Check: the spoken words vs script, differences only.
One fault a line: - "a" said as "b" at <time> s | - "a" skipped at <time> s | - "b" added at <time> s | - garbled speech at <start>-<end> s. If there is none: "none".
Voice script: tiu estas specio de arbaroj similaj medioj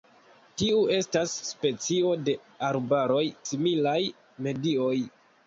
none